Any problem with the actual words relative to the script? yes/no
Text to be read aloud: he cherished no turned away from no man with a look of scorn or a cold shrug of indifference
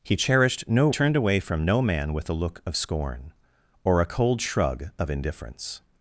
no